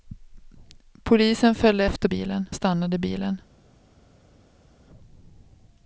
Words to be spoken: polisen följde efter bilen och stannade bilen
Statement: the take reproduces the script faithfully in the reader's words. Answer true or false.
true